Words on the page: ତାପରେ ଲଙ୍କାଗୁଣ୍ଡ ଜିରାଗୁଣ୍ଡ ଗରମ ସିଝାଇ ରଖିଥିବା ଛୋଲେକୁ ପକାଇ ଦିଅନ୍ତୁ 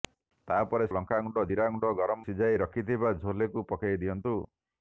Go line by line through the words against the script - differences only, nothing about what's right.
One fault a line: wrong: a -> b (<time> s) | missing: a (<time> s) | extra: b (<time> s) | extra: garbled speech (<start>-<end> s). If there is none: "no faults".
no faults